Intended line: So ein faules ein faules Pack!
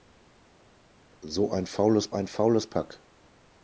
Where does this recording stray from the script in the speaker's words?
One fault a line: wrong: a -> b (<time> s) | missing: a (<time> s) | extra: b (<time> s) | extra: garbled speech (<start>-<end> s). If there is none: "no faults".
no faults